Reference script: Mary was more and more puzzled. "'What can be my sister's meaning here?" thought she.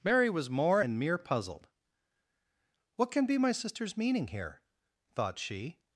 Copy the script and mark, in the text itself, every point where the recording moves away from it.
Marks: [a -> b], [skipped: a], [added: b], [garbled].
Mary was more and [more -> mere] puzzled. "'What can be my sister's meaning here?" thought she.